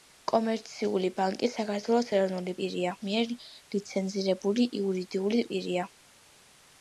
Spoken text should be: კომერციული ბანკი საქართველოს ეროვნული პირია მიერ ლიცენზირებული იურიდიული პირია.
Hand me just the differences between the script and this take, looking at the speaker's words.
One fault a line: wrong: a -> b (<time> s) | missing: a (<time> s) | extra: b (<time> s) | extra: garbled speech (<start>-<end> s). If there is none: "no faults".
no faults